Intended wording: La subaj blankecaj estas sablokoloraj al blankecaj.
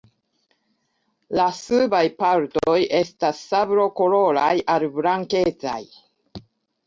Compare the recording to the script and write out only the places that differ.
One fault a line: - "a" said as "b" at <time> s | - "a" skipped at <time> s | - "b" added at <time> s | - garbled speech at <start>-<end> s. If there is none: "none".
- "blankecaj" said as "partoj" at 2.2 s